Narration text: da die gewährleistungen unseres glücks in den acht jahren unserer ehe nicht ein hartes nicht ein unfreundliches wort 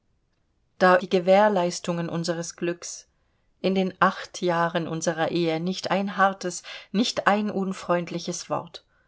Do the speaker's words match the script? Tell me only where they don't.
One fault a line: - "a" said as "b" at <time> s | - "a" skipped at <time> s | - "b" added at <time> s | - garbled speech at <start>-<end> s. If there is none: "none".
none